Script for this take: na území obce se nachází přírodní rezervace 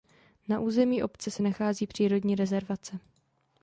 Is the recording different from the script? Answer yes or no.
no